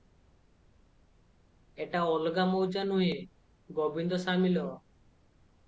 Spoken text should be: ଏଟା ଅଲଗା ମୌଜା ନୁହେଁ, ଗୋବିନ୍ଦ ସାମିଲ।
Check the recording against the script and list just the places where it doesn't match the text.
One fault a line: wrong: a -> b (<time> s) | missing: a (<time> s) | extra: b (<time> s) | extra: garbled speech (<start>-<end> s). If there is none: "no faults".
no faults